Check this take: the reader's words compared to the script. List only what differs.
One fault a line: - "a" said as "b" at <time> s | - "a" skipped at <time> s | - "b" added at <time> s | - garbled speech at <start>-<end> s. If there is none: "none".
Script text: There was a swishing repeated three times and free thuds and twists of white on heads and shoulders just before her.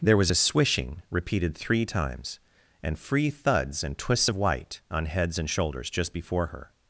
none